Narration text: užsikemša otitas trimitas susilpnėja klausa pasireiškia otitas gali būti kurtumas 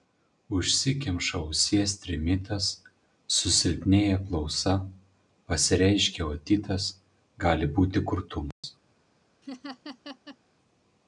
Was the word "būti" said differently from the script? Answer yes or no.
no